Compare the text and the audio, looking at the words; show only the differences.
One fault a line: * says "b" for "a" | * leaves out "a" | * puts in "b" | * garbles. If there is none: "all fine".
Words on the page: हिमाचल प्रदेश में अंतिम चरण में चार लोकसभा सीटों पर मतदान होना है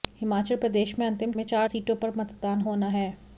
* leaves out "चरण"
* leaves out "लोकसभा"